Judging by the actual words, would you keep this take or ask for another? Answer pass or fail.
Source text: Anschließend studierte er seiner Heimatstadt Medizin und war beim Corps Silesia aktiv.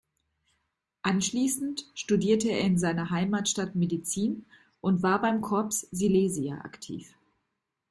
fail